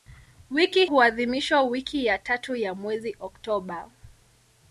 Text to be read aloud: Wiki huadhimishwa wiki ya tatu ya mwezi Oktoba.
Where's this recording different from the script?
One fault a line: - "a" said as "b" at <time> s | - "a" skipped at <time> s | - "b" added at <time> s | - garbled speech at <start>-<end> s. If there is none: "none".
none